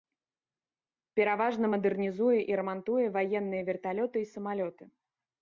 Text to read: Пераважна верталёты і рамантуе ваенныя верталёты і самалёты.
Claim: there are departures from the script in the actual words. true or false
true